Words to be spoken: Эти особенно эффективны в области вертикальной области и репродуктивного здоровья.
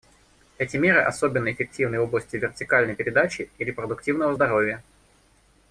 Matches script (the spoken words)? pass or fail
fail